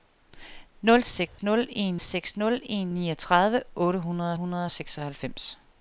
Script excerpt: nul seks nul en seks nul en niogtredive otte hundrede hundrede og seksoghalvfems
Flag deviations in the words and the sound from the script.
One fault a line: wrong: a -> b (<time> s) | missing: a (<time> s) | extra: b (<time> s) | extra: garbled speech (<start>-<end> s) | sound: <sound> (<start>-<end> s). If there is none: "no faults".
sound: dropout (1.3-1.4 s)